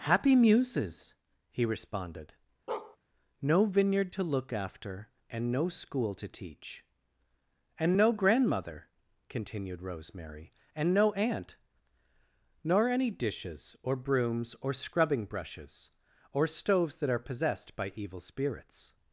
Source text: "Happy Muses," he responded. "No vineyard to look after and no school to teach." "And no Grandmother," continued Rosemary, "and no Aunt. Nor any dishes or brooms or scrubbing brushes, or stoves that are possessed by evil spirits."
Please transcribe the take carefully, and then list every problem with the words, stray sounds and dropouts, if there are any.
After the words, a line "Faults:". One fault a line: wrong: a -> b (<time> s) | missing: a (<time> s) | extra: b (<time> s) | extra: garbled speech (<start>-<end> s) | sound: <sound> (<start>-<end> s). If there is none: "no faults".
"Happy Muses," he responded. "No vineyard to look after and no school to teach." "And no Grandmother," continued Rosemary, "and no Aunt. Nor any dishes or brooms or scrubbing brushes, or stoves that are possessed by evil spirits."
Faults:
sound: bark (2.7-3.0 s)